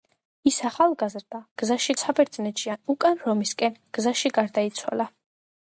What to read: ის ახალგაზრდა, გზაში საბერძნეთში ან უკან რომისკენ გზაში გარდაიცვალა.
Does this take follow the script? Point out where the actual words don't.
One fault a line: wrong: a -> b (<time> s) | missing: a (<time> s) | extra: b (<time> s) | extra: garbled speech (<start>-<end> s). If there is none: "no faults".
no faults